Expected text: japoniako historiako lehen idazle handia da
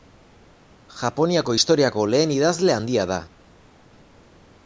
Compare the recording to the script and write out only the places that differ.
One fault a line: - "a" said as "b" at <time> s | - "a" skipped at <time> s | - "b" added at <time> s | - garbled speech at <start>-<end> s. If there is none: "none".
none